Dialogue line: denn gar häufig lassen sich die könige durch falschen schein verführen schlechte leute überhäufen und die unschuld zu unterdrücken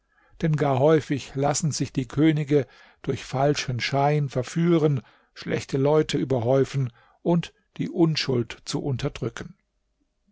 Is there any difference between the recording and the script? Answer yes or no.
no